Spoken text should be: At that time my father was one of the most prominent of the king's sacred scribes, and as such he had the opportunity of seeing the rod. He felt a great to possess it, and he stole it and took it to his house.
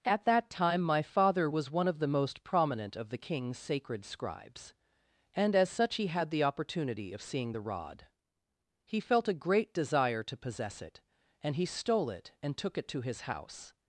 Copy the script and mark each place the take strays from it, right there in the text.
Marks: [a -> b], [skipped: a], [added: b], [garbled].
At that time my father was one of the most prominent of the king's sacred scribes, and as such he had the opportunity of seeing the rod. He felt a great [added: desire] to possess it, and he stole it and took it to his house.